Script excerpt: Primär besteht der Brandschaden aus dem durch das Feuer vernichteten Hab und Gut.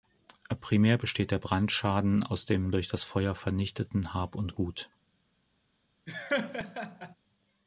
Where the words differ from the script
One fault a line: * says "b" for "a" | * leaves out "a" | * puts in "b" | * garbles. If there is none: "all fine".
all fine